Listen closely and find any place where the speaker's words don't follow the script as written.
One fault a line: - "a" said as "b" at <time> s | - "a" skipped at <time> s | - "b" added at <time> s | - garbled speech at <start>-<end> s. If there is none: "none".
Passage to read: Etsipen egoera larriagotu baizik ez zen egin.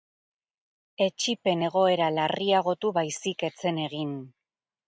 none